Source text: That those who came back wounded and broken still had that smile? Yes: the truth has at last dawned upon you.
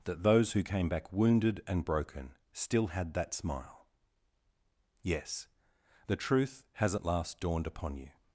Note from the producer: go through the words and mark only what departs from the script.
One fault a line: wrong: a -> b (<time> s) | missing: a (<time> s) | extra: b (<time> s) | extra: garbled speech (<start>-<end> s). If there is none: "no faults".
no faults